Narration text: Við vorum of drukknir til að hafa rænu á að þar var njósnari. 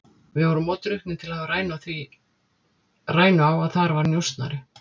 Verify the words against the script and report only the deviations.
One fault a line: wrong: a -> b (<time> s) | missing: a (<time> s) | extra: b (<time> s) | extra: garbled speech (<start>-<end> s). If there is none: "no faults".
no faults